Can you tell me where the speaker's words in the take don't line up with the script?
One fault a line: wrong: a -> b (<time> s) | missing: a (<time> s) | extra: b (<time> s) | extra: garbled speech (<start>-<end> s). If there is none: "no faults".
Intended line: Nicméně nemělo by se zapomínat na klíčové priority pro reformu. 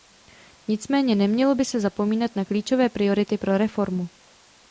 no faults